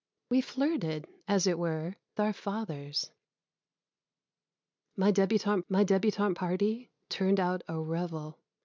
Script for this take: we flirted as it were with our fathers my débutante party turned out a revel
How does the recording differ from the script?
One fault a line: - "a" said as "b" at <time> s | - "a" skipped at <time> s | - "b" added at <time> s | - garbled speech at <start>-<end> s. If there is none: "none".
- "with" skipped at 1.9 s
- "my débutante" added at 5.7 s